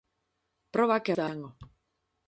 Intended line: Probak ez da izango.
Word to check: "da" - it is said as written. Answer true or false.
true